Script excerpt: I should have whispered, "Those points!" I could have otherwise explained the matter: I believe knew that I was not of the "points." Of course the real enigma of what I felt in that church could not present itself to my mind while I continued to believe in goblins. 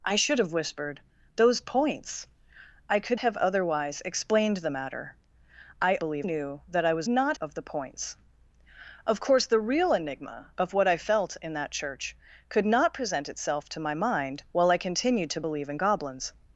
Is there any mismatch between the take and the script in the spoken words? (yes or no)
no